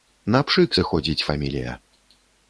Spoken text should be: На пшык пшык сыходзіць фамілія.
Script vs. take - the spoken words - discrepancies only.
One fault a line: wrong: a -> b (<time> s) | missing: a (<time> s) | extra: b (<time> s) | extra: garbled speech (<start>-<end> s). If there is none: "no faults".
missing: пшык (0.8 s)